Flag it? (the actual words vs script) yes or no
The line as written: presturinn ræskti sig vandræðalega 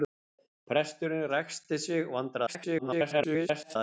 yes